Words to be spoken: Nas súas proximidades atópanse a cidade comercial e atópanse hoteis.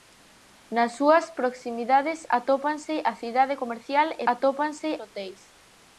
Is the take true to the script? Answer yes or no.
yes